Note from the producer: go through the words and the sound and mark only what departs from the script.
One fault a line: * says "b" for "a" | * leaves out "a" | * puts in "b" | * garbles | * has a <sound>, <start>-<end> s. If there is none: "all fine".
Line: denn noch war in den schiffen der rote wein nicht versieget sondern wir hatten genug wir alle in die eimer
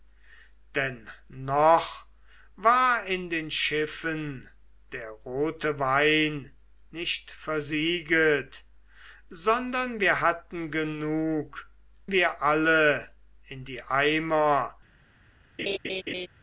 * has a laugh, 15.6-16.3 s